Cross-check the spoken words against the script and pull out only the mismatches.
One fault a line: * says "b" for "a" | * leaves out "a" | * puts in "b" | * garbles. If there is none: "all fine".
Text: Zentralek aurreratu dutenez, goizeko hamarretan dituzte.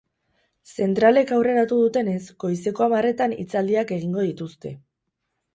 * puts in "hitzaldiak egingo"